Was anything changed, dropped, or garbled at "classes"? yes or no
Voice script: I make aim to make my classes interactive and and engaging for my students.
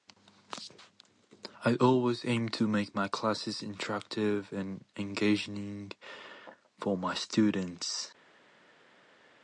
no